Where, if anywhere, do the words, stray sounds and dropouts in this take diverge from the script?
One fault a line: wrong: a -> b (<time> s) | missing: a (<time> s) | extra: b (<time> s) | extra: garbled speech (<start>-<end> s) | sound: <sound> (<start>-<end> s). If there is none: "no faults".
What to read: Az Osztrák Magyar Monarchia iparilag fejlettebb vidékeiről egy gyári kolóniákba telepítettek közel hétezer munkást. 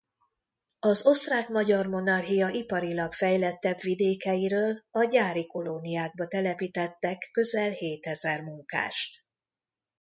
wrong: egy -> a (4.9 s)